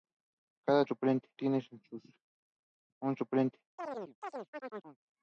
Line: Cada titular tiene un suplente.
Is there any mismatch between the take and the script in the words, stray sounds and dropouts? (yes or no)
yes